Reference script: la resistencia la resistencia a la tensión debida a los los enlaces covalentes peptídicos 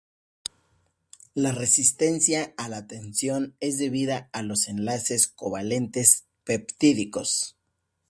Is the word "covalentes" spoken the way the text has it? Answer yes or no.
yes